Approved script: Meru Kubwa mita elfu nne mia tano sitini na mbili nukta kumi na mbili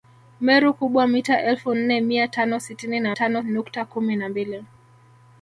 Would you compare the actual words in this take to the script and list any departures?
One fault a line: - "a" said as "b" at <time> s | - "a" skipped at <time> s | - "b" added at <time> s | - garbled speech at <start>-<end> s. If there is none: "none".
- "mbili" said as "tano" at 3.1 s